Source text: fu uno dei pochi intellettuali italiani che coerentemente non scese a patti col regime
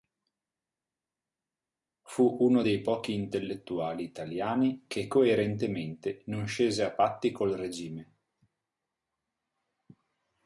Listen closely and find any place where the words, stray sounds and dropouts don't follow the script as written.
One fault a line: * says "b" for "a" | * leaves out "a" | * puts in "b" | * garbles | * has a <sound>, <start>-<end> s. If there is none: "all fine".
all fine